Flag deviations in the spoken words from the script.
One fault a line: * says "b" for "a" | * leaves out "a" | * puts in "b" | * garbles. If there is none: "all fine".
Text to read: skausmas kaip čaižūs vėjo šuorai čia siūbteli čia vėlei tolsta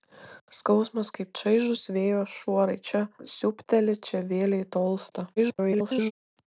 * garbles